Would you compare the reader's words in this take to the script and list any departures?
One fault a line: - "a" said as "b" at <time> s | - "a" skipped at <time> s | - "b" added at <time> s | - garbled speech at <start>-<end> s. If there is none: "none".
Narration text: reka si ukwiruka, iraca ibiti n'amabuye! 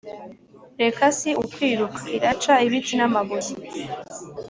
none